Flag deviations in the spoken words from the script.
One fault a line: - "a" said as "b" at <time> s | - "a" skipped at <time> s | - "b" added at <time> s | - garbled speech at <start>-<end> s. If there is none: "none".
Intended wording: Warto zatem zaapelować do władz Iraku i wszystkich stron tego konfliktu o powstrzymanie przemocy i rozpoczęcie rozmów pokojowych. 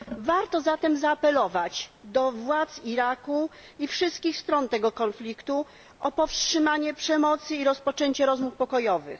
none